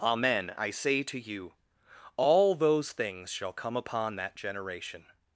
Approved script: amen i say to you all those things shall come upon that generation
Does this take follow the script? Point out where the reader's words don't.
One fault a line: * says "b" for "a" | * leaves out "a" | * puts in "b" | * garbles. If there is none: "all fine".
all fine